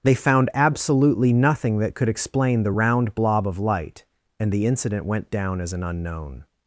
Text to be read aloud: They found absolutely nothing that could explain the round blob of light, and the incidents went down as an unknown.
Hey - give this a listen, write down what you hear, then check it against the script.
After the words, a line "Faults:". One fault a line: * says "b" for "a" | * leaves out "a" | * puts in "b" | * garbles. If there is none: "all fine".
They found absolutely nothing that could explain the round blob of light, and the incident went down as an unknown.
Faults:
* says "incident" for "incidents"